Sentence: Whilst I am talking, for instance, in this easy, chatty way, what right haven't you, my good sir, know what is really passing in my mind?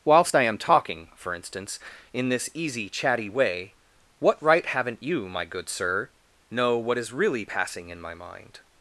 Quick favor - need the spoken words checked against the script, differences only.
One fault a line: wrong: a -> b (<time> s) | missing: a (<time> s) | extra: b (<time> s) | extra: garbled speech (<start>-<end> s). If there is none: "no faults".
no faults